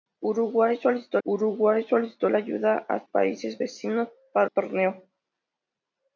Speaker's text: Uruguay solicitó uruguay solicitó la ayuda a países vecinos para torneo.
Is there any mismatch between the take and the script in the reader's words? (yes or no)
no